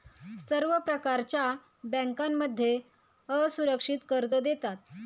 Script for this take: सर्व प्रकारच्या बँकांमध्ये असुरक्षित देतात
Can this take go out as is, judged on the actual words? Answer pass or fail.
fail